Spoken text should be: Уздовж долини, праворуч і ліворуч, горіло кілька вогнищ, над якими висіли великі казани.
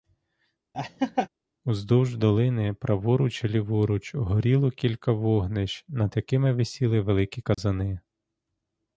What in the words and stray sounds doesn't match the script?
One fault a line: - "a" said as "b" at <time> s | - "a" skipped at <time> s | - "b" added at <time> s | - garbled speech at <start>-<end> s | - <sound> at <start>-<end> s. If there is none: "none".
- laugh at 0.7-1.3 s
- dropout at 7.5-7.6 s